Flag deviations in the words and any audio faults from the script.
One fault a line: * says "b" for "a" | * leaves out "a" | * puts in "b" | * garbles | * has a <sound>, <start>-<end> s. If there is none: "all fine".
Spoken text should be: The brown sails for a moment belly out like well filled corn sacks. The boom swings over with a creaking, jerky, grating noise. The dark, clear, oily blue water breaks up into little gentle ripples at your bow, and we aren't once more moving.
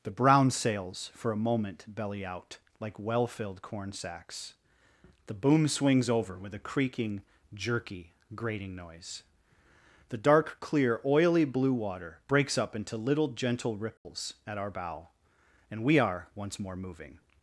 * has a dropout, 14.0-14.1 s
* says "our" for "your"
* says "are" for "aren't"